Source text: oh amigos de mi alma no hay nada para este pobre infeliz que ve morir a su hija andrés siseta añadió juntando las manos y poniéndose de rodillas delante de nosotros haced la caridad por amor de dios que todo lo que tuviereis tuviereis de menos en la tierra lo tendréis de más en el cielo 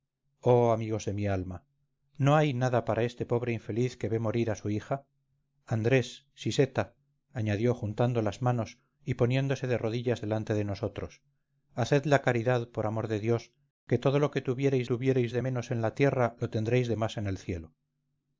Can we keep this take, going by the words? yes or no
yes